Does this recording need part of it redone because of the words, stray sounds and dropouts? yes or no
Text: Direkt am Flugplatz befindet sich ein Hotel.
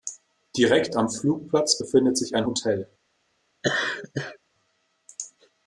yes